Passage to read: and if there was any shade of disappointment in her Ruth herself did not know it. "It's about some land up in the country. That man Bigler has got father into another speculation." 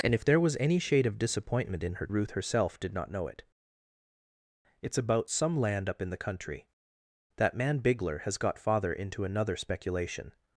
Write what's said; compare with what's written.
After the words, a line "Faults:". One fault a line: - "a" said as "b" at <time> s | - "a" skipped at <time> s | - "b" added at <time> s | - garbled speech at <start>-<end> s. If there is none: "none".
and if there was any shade of disappointment in her Ruth herself did not know it. "It's about some land up in the country. That man Bigler has got father into another speculation."
Faults:
none